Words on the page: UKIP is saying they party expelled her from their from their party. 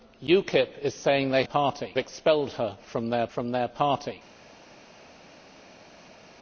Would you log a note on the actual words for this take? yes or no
no